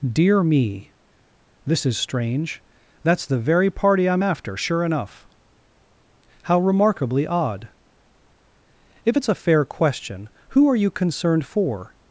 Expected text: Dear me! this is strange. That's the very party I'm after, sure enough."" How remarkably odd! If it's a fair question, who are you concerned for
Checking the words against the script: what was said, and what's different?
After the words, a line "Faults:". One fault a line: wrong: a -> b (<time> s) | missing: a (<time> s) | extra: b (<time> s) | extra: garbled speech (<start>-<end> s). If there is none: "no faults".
Dear me! this is strange. That's the very party I'm after, sure enough."" How remarkably odd! If it's a fair question, who are you concerned for
Faults:
no faults